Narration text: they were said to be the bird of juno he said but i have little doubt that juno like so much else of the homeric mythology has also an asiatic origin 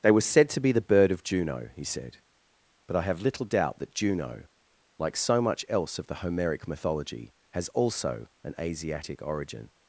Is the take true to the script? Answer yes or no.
yes